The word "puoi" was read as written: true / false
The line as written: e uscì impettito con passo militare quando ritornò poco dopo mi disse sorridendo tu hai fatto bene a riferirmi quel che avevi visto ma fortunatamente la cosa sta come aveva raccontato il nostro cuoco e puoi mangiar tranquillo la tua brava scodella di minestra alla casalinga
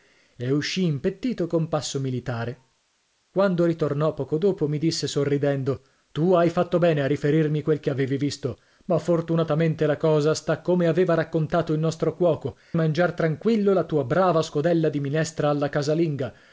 false